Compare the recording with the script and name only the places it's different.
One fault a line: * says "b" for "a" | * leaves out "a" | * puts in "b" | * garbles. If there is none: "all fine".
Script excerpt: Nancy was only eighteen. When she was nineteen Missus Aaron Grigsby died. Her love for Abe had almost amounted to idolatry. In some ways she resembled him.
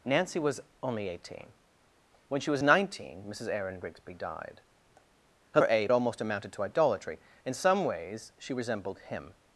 * leaves out "love"
* leaves out "had"